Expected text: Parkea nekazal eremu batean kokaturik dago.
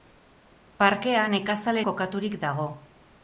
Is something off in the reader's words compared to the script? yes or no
yes